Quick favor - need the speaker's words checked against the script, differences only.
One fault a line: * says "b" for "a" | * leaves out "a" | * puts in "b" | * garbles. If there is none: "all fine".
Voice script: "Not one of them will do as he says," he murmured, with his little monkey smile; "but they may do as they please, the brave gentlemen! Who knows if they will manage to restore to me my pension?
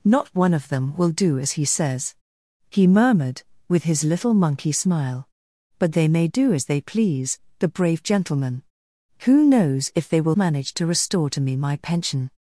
all fine